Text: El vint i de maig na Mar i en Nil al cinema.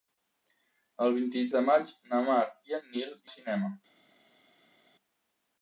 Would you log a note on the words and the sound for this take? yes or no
no